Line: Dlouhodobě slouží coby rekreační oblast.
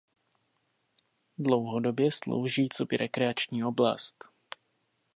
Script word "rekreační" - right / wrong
right